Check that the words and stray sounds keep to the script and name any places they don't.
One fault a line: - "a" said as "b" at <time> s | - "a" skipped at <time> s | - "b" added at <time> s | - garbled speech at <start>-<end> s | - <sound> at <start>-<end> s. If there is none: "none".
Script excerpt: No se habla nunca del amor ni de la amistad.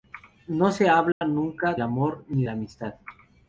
- dropout at 1.1-1.2 s
- "del" skipped at 1.8 s
- "de" skipped at 2.4 s